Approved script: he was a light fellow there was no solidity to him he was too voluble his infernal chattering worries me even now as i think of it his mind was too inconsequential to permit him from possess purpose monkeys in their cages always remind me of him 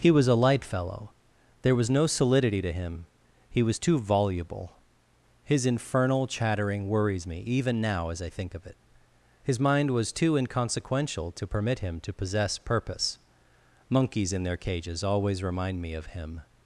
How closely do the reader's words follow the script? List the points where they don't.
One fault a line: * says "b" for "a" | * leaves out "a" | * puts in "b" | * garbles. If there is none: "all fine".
* says "to" for "from"